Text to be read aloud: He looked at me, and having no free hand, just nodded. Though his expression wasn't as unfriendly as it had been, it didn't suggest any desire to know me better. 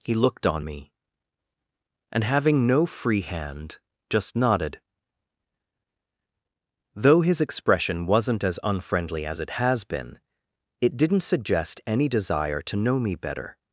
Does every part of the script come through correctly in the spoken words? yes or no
no